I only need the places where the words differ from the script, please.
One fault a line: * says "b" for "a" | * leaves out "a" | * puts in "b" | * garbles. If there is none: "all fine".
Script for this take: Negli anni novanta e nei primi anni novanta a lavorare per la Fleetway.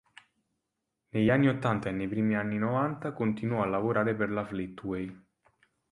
* says "ottanta" for "novanta"
* puts in "continuò"